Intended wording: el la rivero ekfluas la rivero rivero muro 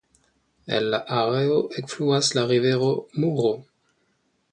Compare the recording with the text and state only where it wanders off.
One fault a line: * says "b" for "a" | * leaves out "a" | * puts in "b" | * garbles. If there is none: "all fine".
* says "areo" for "rivero"
* leaves out "rivero"